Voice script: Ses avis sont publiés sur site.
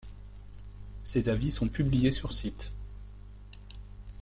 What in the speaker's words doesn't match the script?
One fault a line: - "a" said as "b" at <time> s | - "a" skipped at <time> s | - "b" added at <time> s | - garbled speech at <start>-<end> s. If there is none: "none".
none